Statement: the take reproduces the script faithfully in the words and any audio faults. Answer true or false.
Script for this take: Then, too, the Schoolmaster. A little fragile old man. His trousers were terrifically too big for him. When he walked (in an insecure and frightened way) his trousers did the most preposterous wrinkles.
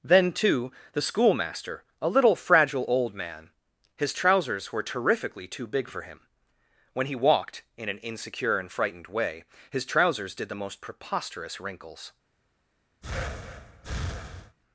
false